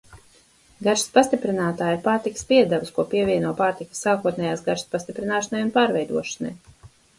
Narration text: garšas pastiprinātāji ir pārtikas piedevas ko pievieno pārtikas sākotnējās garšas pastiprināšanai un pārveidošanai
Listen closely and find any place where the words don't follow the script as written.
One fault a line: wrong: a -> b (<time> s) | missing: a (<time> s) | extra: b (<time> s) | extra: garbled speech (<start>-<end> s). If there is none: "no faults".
no faults